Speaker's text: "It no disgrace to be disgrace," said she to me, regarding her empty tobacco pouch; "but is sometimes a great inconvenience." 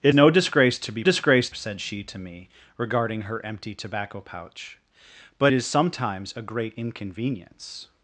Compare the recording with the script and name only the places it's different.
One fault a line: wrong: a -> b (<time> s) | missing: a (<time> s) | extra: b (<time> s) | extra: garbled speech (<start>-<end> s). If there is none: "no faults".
no faults